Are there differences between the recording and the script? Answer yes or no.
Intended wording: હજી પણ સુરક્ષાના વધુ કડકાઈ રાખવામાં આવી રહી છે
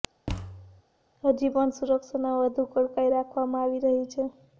no